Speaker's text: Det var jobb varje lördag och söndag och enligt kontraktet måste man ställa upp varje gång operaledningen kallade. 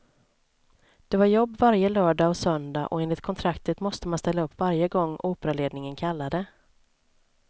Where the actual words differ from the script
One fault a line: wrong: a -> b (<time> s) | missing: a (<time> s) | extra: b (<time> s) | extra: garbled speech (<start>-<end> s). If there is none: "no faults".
no faults